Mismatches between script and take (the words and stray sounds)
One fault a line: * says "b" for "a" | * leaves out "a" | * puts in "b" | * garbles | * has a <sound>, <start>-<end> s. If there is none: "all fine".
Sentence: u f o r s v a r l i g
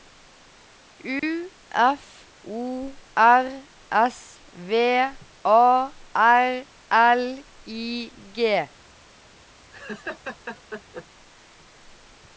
* has a dropout, 1.2-1.2 s
* has a laugh, 9.7-11.1 s